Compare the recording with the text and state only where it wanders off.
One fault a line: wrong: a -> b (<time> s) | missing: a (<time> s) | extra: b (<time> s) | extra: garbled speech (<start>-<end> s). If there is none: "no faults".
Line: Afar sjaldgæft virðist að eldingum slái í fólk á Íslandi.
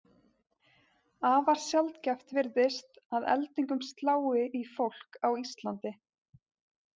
no faults